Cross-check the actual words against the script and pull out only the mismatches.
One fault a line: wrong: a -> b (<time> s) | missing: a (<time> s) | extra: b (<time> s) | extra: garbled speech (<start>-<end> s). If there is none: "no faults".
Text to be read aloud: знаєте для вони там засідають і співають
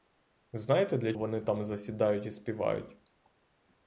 no faults